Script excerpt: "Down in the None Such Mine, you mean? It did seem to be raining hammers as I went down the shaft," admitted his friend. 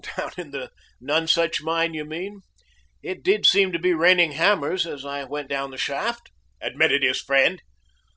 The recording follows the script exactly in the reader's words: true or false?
true